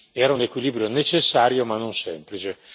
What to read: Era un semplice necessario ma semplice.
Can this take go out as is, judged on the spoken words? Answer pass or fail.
fail